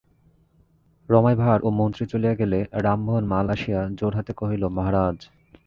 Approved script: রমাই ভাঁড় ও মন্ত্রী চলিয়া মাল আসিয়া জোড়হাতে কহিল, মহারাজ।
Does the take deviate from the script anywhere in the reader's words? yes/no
yes